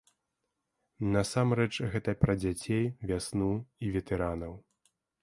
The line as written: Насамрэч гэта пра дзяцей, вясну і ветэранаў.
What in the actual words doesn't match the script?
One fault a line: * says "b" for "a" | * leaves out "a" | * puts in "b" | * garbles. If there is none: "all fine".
all fine